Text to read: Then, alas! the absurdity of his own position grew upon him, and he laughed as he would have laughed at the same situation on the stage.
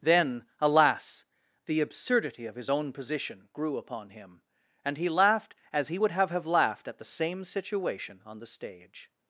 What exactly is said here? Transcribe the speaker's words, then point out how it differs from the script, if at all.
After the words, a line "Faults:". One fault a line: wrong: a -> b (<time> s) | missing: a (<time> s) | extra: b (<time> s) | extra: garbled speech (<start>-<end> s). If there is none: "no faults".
Then, alas! the absurdity of his own position grew upon him, and he laughed as he would have have laughed at the same situation on the stage.
Faults:
extra: have (6.3 s)